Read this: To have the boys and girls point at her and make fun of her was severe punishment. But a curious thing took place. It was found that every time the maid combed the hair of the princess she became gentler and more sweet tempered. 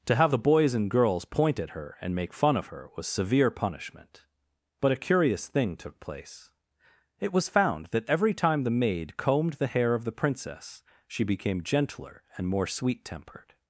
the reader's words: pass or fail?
pass